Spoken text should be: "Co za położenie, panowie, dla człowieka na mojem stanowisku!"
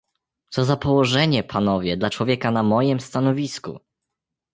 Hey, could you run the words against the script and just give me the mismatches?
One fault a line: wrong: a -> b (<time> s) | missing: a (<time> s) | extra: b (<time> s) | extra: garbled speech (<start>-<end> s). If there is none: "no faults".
no faults